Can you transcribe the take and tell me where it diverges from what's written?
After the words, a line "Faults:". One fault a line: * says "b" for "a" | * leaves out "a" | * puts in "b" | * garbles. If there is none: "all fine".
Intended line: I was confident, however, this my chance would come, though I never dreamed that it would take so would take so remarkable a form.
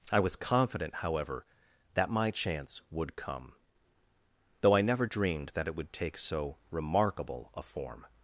I was confident, however, that my chance would come, though I never dreamed that it would take so remarkable a form.
Faults:
* says "that" for "this"
* leaves out "would take so"